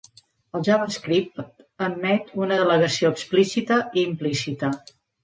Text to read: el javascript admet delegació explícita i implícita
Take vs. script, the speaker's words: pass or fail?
fail